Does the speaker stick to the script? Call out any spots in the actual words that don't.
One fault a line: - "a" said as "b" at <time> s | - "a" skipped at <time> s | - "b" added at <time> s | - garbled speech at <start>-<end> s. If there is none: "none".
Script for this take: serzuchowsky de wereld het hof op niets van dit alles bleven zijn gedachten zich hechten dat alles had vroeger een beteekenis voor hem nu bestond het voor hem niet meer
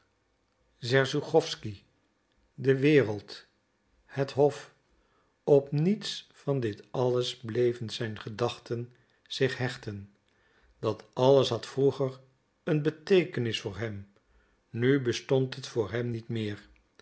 none